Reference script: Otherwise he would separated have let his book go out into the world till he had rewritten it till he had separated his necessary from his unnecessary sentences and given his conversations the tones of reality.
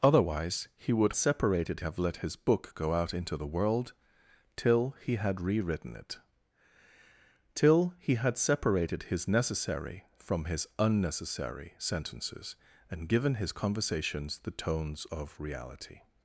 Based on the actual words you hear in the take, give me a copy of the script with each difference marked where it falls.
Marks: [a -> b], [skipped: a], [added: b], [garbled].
Otherwise he would separated have let his book go out into the world till he had rewritten it till he had separated his necessary from his unnecessary sentences and given his conversations the tones of reality.